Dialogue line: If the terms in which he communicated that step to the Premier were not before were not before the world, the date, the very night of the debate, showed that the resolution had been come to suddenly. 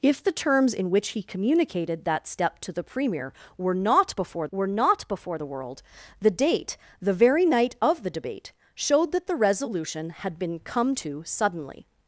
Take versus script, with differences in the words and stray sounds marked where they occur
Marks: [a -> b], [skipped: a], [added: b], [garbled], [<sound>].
If the terms in which he communicated that step to the Premier were not before were not before the world, the date, the very night of the debate, showed that the resolution had been come to suddenly.